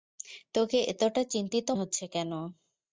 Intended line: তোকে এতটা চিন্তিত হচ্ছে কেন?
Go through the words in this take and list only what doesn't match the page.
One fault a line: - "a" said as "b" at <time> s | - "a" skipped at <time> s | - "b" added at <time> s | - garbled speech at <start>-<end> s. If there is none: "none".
none